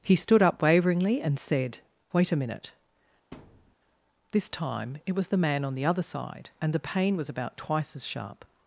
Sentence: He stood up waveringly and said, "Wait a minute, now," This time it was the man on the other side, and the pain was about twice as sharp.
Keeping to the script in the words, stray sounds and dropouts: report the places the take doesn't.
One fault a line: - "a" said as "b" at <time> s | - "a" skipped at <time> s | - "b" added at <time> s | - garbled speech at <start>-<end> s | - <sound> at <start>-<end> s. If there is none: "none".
- "now" skipped at 2.7 s
- thud at 3.3-3.8 s